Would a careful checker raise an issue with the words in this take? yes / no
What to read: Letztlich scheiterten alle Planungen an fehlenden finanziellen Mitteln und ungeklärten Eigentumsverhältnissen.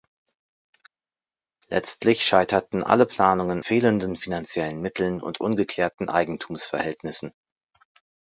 yes